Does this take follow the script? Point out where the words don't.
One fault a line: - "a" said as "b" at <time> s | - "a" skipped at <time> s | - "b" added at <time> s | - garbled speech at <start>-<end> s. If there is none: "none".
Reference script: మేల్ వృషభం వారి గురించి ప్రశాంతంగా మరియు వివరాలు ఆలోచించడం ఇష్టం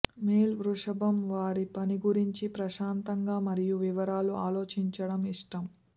- "పని" added at 1.8 s